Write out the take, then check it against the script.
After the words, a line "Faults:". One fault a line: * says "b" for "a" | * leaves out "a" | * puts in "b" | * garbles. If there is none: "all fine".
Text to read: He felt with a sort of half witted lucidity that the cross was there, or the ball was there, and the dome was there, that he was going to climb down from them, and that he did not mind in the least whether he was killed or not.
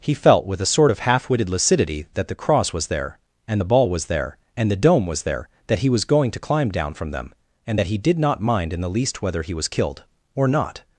He felt with a sort of half witted lucidity that the cross was there, and the ball was there, and the dome was there, that he was going to climb down from them, and that he did not mind in the least whether he was killed or not.
Faults:
* says "and" for "or"